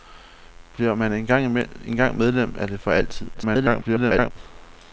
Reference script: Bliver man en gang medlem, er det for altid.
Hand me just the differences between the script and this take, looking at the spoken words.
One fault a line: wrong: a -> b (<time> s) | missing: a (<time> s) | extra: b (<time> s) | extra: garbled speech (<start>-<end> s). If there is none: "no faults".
extra: garbled speech (3.3-4.3 s)